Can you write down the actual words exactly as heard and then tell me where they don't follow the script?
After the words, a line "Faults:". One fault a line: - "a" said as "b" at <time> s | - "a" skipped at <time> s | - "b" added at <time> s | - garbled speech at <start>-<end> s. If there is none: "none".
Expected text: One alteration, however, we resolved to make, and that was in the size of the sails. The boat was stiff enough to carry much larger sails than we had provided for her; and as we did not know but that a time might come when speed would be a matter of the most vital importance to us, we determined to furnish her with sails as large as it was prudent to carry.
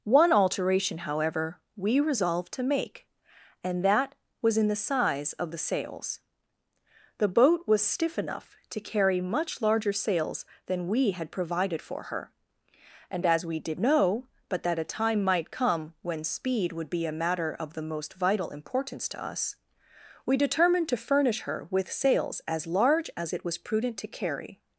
One alteration, however, we resolved to make, and that was in the size of the sails. The boat was stiff enough to carry much larger sails than we had provided for her; and as we did know but that a time might come when speed would be a matter of the most vital importance to us, we determined to furnish her with sails as large as it was prudent to carry.
Faults:
- "not" skipped at 13.8 s